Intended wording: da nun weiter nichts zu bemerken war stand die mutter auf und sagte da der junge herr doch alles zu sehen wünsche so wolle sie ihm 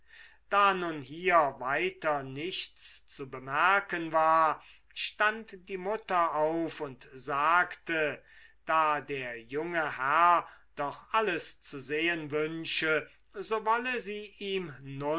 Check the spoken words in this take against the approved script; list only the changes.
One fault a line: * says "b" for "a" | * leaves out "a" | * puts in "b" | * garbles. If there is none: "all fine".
* puts in "hier"